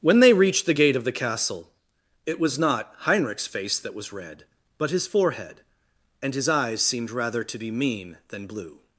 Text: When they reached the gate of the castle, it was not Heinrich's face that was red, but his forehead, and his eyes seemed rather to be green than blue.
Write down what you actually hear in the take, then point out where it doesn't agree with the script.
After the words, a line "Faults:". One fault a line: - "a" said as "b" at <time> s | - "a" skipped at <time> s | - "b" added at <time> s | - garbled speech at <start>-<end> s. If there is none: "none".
When they reached the gate of the castle, it was not Heinrich's face that was red, but his forehead, and his eyes seemed rather to be mean than blue.
Faults:
- "green" said as "mean" at 7.7 s